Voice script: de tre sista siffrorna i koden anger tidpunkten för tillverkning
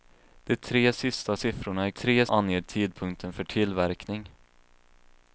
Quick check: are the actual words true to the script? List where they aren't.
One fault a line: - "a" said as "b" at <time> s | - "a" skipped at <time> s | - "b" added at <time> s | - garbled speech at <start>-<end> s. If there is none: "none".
- "koden" said as "tre" at 1.9 s